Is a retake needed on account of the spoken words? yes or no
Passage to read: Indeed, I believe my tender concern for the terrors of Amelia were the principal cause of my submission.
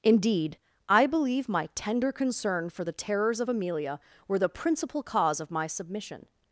no